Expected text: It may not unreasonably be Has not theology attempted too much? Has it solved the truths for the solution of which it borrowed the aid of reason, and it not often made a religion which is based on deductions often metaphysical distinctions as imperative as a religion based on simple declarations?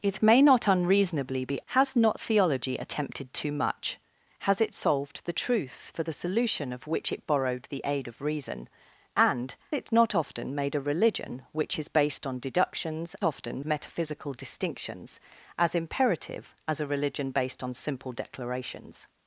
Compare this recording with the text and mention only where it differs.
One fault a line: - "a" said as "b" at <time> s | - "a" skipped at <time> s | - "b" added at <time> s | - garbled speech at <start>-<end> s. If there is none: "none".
none